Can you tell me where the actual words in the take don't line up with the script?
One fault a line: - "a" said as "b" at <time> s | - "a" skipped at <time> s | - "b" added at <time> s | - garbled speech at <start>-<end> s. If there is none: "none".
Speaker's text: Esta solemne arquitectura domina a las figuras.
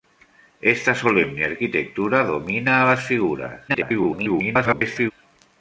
- garbled speech at 3.7-5.1 s